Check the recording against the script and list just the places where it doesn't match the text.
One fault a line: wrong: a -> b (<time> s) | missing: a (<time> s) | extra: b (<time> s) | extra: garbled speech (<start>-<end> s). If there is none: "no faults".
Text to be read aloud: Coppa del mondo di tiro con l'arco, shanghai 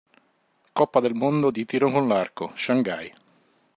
no faults